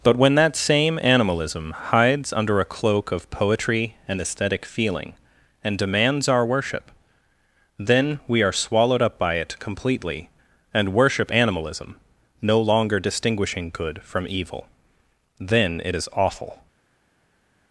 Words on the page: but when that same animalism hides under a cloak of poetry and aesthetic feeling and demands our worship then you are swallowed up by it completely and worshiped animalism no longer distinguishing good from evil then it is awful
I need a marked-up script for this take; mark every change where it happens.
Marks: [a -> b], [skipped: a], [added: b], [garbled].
but when that same animalism hides under a cloak of poetry and aesthetic feeling and demands our worship then [you -> we] are swallowed up by it completely and [worshiped -> worship] animalism no longer distinguishing good from evil then it is awful